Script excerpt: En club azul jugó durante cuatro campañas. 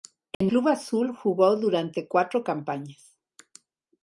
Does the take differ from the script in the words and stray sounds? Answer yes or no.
yes